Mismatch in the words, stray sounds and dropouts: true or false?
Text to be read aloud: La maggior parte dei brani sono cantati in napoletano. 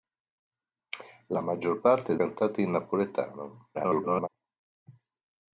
true